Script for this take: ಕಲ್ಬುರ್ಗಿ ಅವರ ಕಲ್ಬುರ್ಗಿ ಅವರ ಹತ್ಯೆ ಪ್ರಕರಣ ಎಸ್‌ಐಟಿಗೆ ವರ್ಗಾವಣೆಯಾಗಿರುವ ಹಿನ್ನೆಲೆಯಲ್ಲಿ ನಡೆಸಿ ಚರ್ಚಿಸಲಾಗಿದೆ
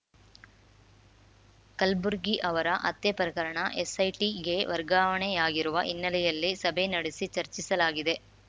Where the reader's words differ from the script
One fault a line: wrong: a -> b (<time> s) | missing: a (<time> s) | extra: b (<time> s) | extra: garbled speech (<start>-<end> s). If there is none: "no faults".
missing: ಕಲ್ಬುರ್ಗಿ ಅವರ (2.7 s)
extra: ಸಭೆ (6.6 s)